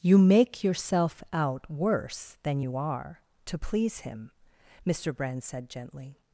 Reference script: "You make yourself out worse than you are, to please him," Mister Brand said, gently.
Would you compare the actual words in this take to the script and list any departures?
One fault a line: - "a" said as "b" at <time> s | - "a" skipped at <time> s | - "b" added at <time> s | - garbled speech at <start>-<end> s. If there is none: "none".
none